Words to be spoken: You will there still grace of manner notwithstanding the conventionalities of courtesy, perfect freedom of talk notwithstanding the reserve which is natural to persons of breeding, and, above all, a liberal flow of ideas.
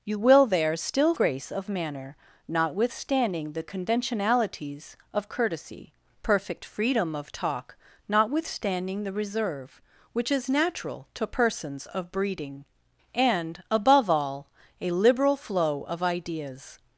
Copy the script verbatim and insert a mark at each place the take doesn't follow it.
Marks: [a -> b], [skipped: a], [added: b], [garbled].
You will there still grace of manner notwithstanding the conventionalities of courtesy, perfect freedom of talk notwithstanding the reserve which is natural to persons of breeding, and, above all, a liberal flow of ideas.